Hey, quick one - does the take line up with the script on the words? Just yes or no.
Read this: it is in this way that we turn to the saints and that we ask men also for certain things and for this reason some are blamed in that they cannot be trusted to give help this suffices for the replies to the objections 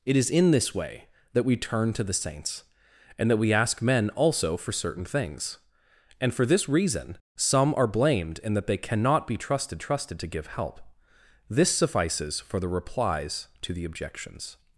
no